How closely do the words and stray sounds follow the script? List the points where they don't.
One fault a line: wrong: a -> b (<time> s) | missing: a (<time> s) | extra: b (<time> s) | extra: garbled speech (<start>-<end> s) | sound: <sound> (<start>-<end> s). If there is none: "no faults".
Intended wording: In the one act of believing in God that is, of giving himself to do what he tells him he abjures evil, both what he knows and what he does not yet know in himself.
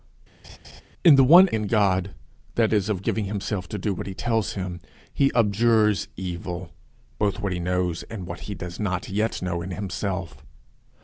sound: laugh (0.4-0.8 s)
missing: act of believing (1.5 s)